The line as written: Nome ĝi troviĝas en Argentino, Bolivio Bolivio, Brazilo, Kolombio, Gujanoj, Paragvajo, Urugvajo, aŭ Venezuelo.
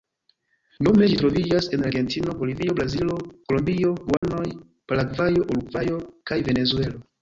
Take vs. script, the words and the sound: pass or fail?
fail